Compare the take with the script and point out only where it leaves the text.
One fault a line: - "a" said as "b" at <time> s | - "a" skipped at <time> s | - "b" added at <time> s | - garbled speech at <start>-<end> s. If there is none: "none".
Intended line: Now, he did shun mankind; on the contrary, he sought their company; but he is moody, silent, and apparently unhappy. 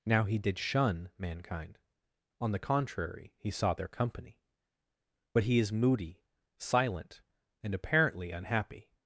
none